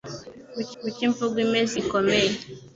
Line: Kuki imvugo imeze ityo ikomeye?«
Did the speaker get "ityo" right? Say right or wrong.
wrong